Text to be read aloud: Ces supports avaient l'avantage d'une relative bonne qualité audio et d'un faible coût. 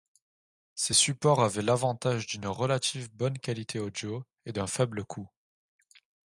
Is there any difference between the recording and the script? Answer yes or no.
no